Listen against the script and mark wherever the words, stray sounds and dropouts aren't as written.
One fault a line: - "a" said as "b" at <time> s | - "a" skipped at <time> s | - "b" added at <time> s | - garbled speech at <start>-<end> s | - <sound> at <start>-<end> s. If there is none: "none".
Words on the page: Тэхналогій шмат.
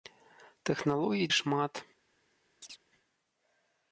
- chirp at 2.6-2.8 s